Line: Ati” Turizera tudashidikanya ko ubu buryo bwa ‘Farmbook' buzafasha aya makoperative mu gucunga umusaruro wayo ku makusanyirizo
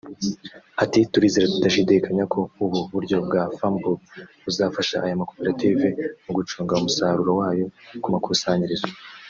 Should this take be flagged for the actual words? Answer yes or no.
no